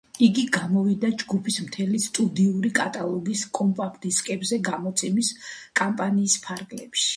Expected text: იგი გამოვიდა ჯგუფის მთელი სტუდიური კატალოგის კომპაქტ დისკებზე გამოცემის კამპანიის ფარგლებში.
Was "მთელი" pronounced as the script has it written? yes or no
yes